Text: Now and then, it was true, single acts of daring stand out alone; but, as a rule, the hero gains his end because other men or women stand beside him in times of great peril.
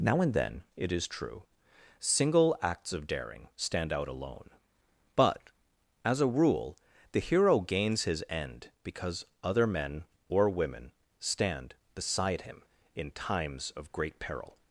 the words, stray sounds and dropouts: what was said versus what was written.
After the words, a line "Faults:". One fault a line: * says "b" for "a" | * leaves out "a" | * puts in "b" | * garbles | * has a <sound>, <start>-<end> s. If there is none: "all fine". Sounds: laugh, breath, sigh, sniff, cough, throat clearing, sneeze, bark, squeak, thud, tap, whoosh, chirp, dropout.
Now and then, it is true, single acts of daring stand out alone; but, as a rule, the hero gains his end because other men or women stand beside him in times of great peril.
Faults:
* says "is" for "was"